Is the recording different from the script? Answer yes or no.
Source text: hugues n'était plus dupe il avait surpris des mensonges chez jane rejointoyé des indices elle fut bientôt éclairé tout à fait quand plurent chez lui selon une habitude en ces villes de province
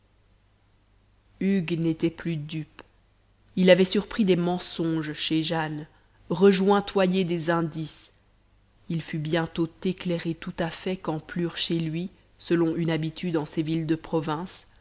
yes